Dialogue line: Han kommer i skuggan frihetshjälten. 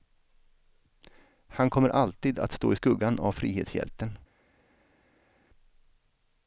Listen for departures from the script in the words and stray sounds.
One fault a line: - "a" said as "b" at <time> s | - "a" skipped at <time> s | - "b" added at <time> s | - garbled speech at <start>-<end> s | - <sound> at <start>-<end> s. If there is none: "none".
- "alltid att stå" added at 1.9 s
- "av" added at 3.2 s